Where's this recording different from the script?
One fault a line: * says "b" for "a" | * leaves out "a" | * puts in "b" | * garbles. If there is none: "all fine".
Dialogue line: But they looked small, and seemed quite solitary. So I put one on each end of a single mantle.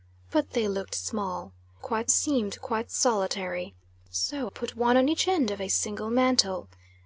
* says "quite" for "and"
* leaves out "I"